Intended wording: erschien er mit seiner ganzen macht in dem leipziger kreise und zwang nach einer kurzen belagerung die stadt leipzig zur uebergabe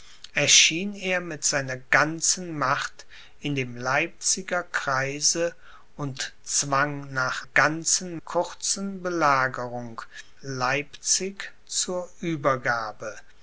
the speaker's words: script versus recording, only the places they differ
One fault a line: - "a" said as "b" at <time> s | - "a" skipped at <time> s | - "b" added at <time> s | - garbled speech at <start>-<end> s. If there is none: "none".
- "einer" said as "ganzen" at 7.4 s
- "die stadt" skipped at 10.0 s